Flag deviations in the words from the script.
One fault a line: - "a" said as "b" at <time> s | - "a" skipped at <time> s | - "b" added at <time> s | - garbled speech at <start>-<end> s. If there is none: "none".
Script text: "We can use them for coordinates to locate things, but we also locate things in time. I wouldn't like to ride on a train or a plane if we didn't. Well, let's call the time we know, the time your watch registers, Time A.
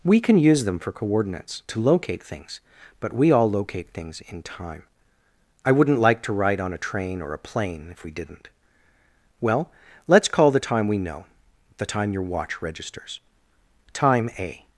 - "also" said as "all" at 3.3 s